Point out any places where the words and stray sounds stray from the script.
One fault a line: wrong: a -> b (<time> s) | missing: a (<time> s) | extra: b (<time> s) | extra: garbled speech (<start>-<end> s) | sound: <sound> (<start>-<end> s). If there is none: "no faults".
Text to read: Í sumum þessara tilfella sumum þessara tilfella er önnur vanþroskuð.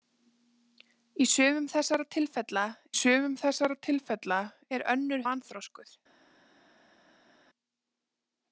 no faults